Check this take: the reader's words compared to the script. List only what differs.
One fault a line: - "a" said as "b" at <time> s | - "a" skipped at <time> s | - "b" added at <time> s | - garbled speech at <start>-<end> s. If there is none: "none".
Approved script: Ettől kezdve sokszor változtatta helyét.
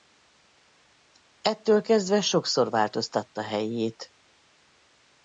none